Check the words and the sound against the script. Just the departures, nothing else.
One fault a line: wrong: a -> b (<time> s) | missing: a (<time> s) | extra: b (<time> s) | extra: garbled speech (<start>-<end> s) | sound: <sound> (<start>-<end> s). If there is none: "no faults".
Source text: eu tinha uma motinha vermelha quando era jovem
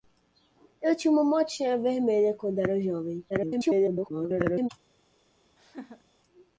extra: garbled speech (3.3-4.7 s)
sound: laugh (5.6-6.0 s)